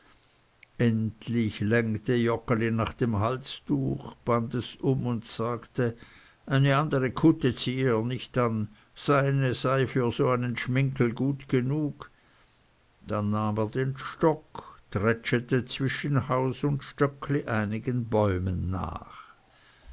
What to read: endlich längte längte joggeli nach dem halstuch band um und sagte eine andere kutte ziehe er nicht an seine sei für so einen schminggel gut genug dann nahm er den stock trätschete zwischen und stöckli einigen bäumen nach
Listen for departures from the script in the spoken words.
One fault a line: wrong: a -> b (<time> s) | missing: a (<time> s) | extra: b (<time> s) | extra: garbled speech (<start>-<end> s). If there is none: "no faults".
missing: längte (2.1 s)
extra: es (4.5 s)
extra: haus (16.3 s)